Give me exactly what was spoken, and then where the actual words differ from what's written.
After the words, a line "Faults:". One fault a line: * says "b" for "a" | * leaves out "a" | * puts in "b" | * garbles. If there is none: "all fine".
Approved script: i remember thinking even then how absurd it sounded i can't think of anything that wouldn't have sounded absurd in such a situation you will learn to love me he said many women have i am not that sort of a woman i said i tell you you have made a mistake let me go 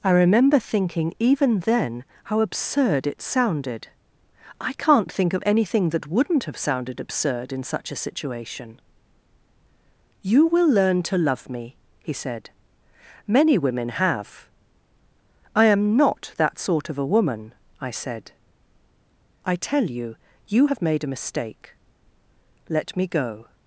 i remember thinking even then how absurd it sounded i can't think of anything that wouldn't have sounded absurd in such a situation you will learn to love me he said many women have i am not that sort of a woman i said i tell you you have made a mistake let me go
Faults:
all fine